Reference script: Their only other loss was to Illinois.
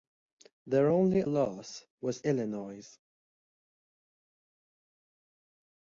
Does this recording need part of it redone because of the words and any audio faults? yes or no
yes